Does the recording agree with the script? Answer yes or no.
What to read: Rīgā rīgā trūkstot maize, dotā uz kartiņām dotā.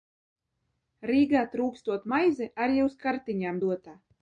no